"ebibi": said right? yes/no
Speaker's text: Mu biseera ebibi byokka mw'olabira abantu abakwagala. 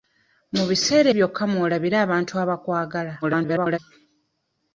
no